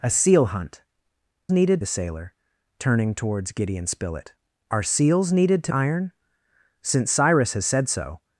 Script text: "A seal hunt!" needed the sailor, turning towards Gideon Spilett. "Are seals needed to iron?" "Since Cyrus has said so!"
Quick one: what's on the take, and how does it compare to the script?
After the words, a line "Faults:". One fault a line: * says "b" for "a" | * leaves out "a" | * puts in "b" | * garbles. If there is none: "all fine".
"A seal hunt!" needed the sailor, turning towards Gideon Spilett. "Are seals needed to iron?" "Since Cyrus has said so!"
Faults:
all fine